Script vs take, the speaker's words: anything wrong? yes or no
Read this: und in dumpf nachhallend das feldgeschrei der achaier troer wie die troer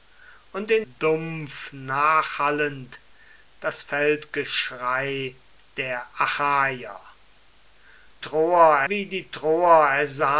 no